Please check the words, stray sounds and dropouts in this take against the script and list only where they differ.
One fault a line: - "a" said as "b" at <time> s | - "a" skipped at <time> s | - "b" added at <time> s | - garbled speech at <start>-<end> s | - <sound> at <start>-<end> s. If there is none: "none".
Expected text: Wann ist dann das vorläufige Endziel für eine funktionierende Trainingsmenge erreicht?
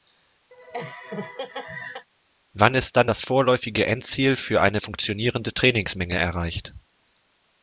- laugh at 0.5-2.1 s